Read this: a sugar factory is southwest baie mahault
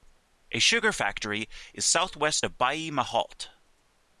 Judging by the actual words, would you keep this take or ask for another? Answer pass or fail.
fail